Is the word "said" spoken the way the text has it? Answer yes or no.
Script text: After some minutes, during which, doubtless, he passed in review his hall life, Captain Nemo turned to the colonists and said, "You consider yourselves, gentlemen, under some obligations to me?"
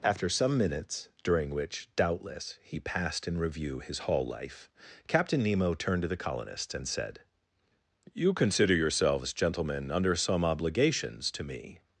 yes